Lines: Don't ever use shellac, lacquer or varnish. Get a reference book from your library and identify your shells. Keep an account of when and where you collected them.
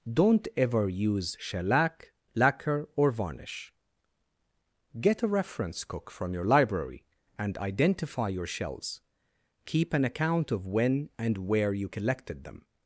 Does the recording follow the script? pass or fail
fail